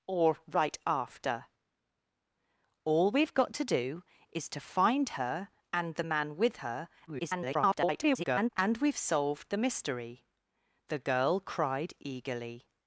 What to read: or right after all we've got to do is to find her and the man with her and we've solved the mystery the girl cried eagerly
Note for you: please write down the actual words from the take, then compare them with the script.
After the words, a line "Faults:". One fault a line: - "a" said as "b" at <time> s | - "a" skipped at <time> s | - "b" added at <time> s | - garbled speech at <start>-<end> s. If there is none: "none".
or right after all we've got to do is to find her and the man with her [garbled] and we've solved the mystery the girl cried eagerly
Faults:
- garbled speech at 7.1-8.5 s